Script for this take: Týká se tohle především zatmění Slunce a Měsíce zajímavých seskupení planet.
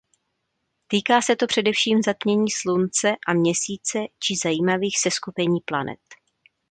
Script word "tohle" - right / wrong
wrong